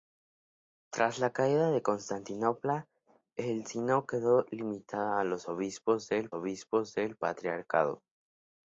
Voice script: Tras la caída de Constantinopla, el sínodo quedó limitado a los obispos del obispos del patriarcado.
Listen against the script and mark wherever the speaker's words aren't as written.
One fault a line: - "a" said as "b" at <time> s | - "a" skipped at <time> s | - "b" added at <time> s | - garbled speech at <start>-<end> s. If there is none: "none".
none